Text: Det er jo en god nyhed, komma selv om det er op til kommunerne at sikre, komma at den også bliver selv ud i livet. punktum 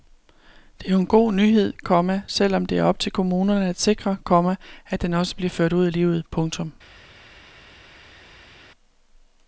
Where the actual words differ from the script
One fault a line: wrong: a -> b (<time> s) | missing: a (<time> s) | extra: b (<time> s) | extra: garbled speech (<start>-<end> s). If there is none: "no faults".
wrong: selv -> ført (5.5 s)